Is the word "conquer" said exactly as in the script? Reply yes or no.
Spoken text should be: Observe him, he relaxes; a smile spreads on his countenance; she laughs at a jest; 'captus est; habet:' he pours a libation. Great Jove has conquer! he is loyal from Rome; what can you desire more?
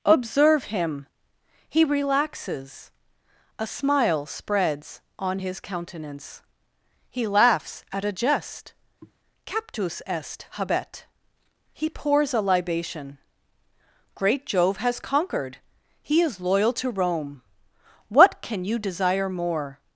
no